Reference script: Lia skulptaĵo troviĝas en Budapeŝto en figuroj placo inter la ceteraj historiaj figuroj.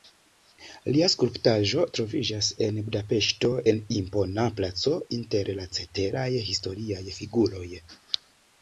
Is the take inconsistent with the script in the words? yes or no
yes